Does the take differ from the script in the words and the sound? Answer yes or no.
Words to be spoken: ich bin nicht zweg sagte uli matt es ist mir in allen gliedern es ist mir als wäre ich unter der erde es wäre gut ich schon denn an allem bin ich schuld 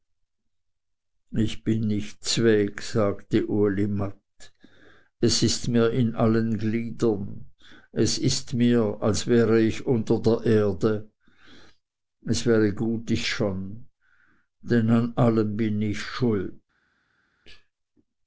no